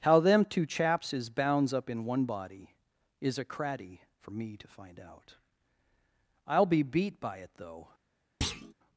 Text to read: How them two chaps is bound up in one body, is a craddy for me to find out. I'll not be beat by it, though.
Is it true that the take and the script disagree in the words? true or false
true